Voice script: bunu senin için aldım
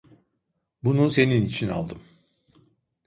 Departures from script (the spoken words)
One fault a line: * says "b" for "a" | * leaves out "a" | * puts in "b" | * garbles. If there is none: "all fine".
all fine